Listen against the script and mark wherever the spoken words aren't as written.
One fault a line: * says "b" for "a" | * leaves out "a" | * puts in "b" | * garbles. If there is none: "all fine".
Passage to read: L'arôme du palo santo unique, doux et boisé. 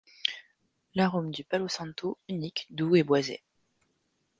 all fine